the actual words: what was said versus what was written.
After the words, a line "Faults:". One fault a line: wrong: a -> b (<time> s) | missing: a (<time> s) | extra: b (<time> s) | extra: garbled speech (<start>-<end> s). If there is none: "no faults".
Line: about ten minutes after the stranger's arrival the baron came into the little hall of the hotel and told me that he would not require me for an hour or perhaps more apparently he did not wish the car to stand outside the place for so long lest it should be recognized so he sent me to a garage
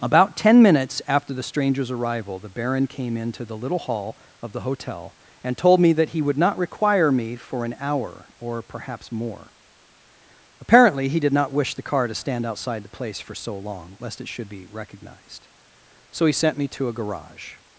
about ten minutes after the stranger's arrival the baron came into the little hall of the hotel and told me that he would not require me for an hour or perhaps more apparently he did not wish the car to stand outside the place for so long lest it should be recognized so he sent me to a garage
Faults:
no faults